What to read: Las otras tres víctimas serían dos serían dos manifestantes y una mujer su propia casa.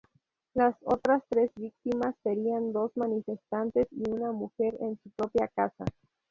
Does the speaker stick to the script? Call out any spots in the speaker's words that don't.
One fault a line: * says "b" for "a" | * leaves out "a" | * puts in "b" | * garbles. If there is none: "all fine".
* leaves out "serían dos"
* puts in "en"